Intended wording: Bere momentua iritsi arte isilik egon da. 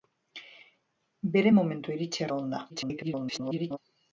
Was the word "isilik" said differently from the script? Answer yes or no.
yes